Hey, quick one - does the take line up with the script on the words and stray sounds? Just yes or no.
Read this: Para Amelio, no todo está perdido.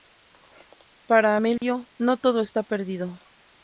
no